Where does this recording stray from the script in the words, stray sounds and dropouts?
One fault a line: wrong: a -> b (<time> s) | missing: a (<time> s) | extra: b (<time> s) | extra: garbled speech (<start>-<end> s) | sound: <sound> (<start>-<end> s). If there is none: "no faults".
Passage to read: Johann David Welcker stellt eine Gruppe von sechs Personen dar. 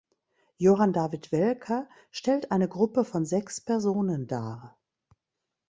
no faults